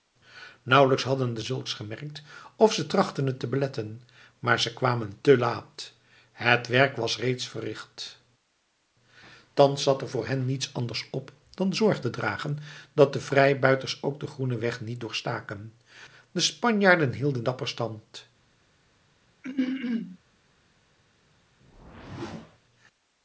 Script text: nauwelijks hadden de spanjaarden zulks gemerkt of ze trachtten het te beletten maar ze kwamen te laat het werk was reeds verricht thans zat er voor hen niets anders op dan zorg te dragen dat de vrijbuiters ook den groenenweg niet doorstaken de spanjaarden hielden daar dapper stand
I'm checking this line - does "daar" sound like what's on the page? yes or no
no